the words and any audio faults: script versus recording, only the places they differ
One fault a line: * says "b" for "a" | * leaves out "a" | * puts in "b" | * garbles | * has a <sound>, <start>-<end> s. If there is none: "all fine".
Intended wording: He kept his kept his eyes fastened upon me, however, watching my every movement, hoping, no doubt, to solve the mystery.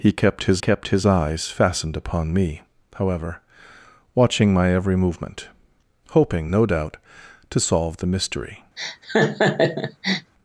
* has a laugh, 8.8-10.3 s